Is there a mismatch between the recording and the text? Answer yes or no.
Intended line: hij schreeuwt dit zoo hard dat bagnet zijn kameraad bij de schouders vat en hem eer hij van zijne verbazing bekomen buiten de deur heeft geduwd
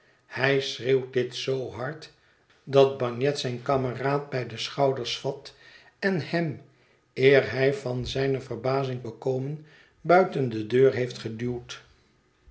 no